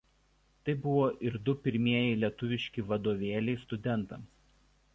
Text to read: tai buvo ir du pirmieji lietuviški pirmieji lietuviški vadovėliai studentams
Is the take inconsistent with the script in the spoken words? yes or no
yes